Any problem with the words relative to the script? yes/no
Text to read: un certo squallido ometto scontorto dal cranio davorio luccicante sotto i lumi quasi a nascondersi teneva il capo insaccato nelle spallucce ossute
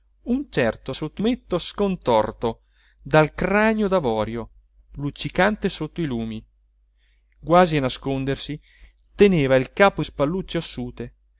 yes